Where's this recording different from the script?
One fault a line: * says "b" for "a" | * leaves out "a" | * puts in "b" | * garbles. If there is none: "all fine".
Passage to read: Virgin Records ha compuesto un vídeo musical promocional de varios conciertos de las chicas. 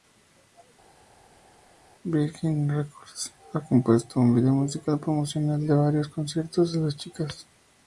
all fine